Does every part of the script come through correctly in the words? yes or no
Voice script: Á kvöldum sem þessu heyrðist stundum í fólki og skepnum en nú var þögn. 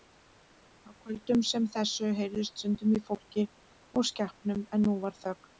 yes